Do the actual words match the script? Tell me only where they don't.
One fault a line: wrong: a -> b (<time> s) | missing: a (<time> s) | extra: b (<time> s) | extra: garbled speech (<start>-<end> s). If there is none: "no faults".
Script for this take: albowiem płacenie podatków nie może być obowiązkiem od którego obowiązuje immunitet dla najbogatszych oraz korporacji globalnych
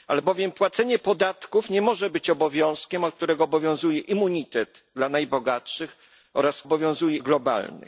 wrong: korporacji -> obowiązuje (6.6 s)